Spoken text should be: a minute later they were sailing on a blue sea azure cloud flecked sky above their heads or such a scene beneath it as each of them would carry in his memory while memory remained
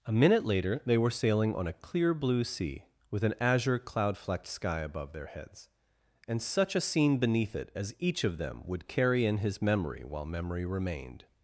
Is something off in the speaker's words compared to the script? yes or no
yes